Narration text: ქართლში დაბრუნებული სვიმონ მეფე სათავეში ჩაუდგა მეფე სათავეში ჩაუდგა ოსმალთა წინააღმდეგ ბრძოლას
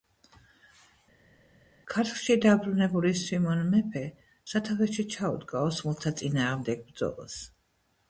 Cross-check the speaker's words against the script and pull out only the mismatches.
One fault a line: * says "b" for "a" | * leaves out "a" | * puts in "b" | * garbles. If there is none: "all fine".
* leaves out "მეფე სათავეში ჩაუდგა"